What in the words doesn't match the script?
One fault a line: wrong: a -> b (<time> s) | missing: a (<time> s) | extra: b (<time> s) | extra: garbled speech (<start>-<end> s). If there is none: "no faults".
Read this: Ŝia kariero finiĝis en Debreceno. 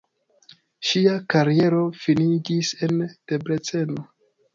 no faults